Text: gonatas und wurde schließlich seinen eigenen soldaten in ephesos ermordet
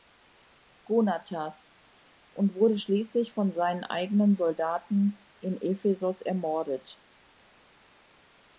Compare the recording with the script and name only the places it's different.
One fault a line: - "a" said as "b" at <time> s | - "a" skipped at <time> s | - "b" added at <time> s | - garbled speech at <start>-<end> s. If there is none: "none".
- "von" added at 3.3 s